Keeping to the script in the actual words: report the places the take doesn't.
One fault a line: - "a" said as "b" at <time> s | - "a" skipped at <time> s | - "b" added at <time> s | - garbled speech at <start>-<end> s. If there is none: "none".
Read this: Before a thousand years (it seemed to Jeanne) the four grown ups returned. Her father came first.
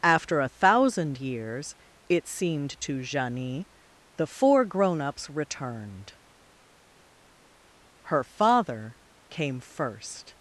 - "Before" said as "After" at 0.0 s